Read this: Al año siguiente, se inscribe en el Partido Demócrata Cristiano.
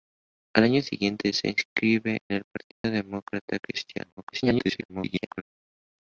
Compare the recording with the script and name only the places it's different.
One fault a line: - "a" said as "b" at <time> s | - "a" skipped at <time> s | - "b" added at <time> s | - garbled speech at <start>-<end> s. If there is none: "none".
- "en" skipped at 2.2 s
- garbled speech at 4.2-5.4 s